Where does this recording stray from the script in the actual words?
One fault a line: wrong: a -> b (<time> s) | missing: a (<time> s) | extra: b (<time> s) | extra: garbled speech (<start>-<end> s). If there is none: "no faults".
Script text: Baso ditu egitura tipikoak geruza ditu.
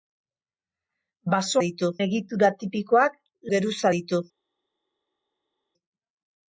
no faults